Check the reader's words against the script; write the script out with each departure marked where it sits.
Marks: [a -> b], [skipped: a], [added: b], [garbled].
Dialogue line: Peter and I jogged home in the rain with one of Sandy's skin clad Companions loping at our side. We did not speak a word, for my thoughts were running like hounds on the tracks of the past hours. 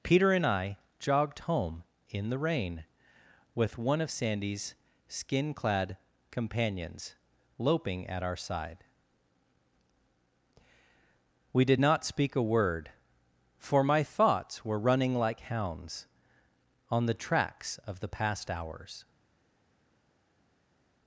Peter and I jogged home in the rain with one of Sandy's skin clad Companions loping at our side. We did not speak a word, for my thoughts were running like hounds on the tracks of the past hours.